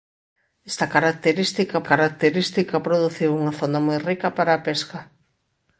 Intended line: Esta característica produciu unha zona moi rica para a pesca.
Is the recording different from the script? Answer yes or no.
yes